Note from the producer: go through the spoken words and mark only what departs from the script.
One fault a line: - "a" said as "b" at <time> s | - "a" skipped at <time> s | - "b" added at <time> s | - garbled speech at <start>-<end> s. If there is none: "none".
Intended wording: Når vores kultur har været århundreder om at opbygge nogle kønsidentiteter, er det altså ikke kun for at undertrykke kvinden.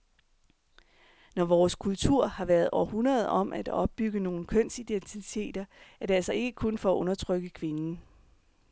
none